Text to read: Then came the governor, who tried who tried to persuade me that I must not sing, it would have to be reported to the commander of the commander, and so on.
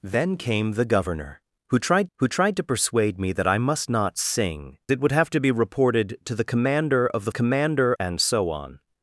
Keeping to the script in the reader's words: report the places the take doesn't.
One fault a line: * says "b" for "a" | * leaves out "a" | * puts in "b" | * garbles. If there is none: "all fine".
all fine